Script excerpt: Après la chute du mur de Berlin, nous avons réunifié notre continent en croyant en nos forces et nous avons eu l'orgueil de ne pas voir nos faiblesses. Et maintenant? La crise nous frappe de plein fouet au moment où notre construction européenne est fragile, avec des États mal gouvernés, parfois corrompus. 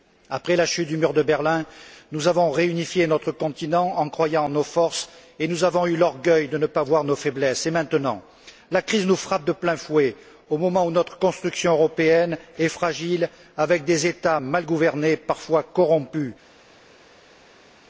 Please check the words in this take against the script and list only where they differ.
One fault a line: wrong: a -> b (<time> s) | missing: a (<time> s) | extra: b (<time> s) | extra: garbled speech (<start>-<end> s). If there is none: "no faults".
no faults